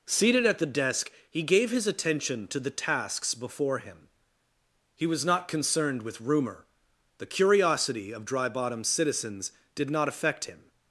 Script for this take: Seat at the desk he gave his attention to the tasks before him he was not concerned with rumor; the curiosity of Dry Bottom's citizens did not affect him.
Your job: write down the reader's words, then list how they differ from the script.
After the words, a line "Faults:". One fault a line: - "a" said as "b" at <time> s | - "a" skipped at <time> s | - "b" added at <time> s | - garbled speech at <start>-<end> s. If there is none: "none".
Seated at the desk he gave his attention to the tasks before him he was not concerned with rumor; the curiosity of Dry Bottom's citizens did not affect him.
Faults:
- "Seat" said as "Seated" at 0.1 s